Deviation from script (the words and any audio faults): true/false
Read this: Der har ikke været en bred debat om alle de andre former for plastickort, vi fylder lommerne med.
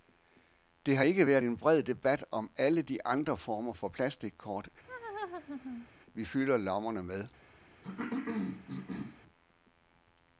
true